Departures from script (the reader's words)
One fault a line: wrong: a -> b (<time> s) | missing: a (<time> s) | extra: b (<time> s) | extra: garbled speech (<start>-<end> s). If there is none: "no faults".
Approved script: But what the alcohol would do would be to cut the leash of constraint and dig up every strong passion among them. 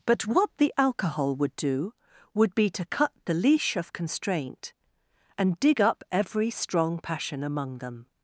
no faults